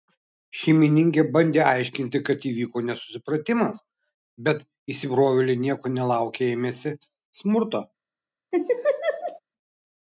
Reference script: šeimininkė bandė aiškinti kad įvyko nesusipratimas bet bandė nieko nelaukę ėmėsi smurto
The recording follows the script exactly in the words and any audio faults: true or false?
false